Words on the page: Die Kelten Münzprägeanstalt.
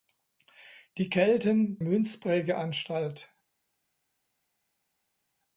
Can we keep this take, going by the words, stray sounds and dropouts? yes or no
yes